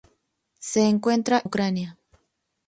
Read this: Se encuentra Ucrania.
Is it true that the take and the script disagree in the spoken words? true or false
false